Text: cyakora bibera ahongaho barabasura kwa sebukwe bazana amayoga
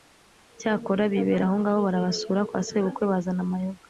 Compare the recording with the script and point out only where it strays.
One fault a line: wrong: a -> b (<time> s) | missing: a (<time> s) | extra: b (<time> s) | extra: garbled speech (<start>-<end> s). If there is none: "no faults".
no faults